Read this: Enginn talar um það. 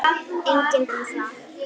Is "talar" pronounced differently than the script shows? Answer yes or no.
yes